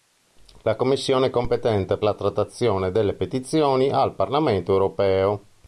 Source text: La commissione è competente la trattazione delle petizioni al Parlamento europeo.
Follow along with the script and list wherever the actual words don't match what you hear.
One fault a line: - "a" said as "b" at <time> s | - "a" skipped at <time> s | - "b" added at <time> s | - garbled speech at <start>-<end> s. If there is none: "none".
none